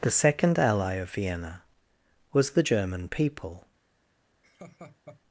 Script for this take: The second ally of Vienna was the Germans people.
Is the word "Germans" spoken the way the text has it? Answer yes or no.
no